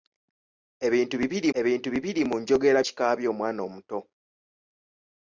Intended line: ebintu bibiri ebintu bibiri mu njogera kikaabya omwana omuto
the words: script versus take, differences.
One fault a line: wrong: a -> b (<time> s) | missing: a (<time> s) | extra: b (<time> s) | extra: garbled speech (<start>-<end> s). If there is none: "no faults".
no faults